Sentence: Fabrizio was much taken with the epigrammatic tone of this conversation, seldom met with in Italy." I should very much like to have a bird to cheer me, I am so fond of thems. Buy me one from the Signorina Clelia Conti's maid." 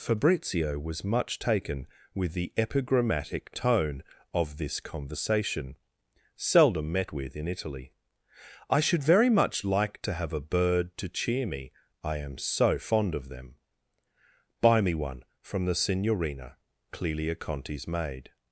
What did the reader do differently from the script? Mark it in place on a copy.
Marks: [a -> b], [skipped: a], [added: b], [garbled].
Fabrizio was much taken with the epigrammatic tone of this conversation, seldom met with in Italy." I should very much like to have a bird to cheer me, I am so fond of [thems. -> them] Buy me one from the Signorina Clelia Conti's maid."